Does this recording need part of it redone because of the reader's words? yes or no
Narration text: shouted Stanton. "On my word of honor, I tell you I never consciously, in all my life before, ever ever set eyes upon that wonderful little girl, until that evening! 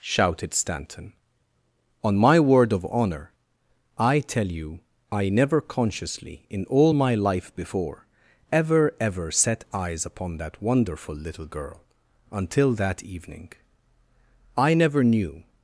yes